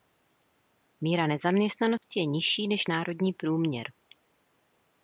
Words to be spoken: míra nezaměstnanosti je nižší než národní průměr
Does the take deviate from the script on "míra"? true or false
false